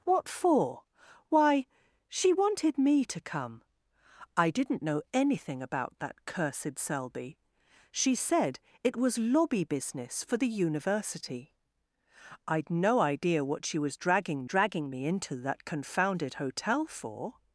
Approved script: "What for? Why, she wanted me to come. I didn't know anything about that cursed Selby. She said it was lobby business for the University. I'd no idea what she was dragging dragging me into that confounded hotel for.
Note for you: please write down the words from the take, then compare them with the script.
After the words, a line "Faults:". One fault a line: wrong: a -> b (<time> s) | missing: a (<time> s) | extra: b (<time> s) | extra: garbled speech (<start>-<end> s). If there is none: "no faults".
"What for? Why, she wanted me to come. I didn't know anything about that cursed Selby. She said it was lobby business for the University. I'd no idea what she was dragging dragging me into that confounded hotel for.
Faults:
no faults